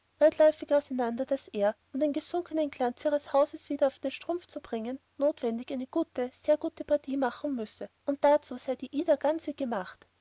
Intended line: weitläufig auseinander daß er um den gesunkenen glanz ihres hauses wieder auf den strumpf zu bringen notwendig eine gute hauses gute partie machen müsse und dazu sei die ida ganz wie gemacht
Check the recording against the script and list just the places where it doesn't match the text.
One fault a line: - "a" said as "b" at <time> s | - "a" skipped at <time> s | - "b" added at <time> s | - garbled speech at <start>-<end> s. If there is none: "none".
- "hauses" said as "sehr" at 6.3 s